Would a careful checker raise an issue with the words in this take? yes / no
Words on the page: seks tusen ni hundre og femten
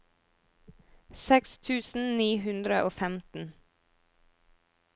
no